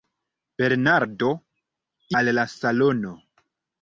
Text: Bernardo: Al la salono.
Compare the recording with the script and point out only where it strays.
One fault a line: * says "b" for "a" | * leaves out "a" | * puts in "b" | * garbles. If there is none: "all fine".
all fine